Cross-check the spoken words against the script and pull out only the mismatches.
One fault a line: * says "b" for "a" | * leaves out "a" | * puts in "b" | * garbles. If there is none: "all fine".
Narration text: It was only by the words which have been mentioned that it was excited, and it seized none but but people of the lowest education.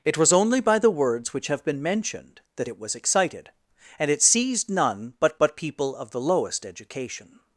all fine